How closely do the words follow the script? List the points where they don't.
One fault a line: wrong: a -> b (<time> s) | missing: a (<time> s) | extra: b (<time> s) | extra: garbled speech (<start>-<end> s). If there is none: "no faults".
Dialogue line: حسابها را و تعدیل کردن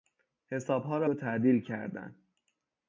no faults